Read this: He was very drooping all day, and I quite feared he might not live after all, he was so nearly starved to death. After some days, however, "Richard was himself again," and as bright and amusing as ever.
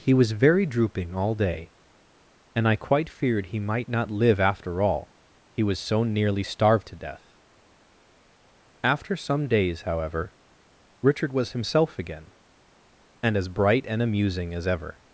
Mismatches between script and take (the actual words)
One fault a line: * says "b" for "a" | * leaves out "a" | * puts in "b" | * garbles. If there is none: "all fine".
all fine